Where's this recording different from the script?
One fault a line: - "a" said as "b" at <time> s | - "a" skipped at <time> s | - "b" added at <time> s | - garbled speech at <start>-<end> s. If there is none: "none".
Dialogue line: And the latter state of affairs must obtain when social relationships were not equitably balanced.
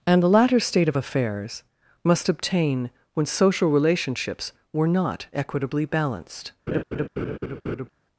none